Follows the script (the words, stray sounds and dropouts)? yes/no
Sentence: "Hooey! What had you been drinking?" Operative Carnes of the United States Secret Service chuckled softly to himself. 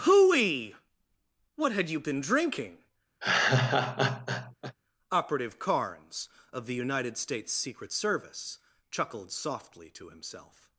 no